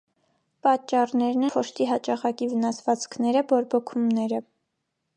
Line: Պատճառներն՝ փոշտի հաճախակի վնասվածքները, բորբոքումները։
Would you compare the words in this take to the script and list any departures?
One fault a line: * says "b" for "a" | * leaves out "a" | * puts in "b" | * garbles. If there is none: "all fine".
all fine